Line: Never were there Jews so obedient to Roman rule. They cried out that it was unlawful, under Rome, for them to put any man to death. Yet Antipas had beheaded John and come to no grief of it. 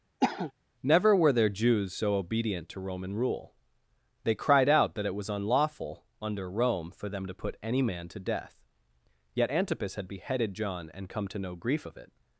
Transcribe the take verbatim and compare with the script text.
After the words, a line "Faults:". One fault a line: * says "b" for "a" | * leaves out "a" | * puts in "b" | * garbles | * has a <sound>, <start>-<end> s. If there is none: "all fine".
Never were there Jews so obedient to Roman rule. They cried out that it was unlawful, under Rome, for them to put any man to death. Yet Antipas had beheaded John and come to no grief of it.
Faults:
* has a cough, 0.2-0.5 s